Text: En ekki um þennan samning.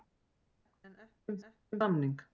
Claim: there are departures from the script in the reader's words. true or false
true